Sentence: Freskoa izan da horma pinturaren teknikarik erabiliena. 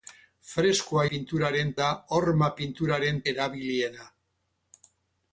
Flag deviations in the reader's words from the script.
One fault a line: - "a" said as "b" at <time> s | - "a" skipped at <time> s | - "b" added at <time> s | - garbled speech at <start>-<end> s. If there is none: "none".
- "izan" said as "pinturaren" at 1.1 s
- "teknikarik" skipped at 3.2 s